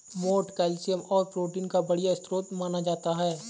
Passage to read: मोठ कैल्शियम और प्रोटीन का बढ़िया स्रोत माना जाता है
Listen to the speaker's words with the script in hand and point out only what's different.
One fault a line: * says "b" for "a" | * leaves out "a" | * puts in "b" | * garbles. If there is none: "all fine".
all fine